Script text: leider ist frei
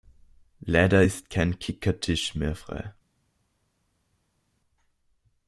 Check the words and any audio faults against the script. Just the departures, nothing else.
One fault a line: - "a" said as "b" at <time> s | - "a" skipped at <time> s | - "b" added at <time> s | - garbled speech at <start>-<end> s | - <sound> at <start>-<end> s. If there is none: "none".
- "kein kickertisch mehr" added at 1.3 s